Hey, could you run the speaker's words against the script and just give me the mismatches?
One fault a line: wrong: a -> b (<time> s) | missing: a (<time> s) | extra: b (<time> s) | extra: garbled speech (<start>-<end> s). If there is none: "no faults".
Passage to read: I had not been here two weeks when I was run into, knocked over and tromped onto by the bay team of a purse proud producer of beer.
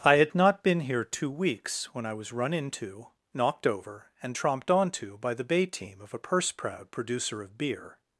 no faults